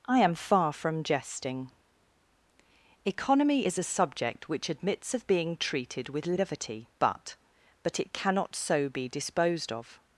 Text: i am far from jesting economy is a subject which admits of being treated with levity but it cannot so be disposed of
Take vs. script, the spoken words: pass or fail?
fail